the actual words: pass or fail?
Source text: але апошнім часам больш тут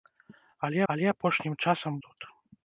fail